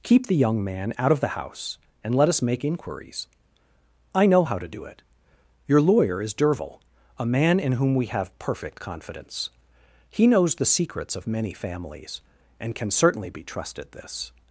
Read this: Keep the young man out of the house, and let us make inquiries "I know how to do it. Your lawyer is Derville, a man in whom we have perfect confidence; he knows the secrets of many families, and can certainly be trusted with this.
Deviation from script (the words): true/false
true